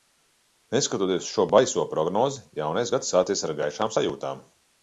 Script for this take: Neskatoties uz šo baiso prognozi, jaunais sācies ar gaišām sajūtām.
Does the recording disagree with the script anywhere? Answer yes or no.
yes